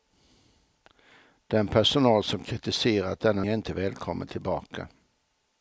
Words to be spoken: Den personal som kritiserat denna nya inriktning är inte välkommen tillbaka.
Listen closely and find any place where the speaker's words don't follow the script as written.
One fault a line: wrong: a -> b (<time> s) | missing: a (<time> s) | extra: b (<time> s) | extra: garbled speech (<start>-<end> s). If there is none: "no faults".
missing: nya inriktning (3.5 s)